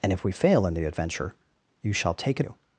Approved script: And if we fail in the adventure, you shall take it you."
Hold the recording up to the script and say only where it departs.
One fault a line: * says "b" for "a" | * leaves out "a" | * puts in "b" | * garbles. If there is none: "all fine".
all fine